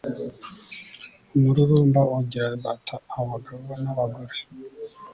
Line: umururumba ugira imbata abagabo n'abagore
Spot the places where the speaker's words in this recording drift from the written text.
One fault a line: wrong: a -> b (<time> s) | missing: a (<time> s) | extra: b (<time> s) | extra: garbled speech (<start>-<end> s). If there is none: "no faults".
no faults